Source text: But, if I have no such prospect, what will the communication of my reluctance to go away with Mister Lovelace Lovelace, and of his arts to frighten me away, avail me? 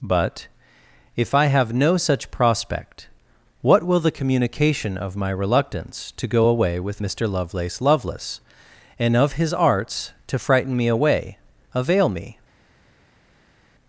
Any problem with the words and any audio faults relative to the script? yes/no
no